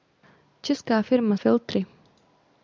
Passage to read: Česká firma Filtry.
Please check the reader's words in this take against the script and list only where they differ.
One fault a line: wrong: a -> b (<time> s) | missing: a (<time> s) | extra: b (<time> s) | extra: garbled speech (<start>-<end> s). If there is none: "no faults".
no faults